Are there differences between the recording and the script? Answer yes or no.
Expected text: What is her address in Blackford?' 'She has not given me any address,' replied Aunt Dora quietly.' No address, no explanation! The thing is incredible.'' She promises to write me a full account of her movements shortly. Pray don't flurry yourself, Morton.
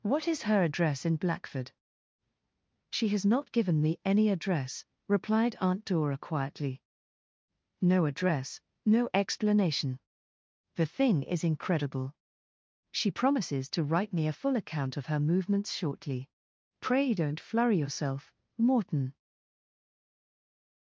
no